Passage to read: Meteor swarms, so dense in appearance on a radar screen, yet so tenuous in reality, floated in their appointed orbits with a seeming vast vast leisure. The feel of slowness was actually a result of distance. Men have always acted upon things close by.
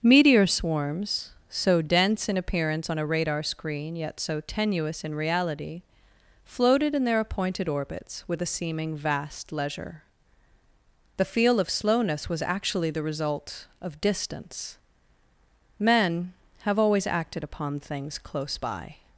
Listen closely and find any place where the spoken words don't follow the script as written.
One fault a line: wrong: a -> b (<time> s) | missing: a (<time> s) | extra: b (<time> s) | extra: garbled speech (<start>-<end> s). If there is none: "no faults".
missing: vast (9.5 s)
wrong: a -> the (12.9 s)